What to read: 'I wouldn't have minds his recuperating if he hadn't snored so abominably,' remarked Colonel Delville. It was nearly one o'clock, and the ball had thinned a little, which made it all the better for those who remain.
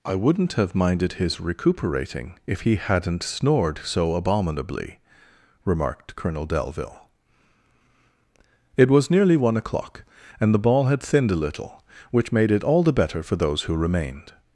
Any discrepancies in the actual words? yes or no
yes